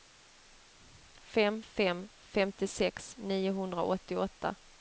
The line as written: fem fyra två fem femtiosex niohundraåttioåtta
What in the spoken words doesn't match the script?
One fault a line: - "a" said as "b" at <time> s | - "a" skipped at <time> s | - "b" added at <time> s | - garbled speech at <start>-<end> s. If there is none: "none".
- "fyra två" skipped at 1.6 s